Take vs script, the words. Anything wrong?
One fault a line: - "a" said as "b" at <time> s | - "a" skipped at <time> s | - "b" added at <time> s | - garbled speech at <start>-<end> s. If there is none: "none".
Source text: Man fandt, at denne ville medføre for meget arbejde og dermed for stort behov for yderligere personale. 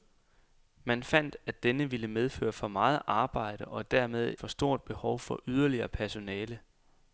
none